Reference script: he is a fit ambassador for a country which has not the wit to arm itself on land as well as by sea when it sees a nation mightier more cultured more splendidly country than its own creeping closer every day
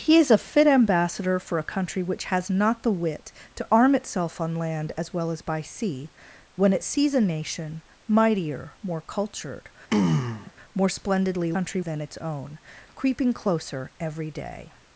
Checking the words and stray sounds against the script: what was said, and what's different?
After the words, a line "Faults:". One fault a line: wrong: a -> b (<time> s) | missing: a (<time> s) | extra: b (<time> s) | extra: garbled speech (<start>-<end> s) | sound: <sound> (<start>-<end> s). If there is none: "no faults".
he is a fit ambassador for a country which has not the wit to arm itself on land as well as by sea when it sees a nation mightier more cultured more splendidly country than its own creeping closer every day
Faults:
sound: throat clearing (9.9-10.5 s)